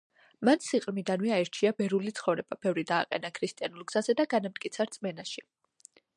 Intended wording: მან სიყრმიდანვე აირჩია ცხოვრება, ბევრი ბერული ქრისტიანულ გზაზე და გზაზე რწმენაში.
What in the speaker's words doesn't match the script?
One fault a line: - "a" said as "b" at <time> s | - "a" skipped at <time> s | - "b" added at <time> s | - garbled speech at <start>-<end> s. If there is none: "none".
- "ბერული" added at 1.8 s
- "ბერული" said as "დააყენა" at 2.9 s
- "გზაზე" said as "განამტკიცა" at 4.4 s